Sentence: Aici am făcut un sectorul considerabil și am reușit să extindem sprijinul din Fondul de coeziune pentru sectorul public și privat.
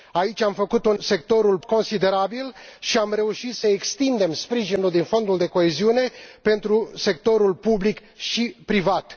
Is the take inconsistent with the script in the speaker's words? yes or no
no